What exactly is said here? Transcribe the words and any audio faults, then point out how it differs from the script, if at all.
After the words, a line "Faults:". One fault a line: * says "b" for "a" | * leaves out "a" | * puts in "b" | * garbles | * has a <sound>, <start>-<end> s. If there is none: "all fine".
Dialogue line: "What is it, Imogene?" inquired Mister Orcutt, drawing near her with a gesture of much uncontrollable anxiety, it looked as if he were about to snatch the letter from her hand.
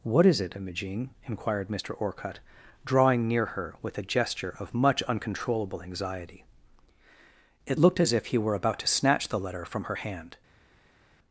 "What is it, Imogene?" inquired Mister Orcutt, drawing near her with a gesture of much uncontrollable anxiety, it looked as if he were about to snatch the letter from her hand.
Faults:
all fine